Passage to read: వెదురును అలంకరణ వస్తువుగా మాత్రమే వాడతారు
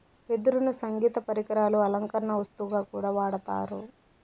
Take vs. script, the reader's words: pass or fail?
fail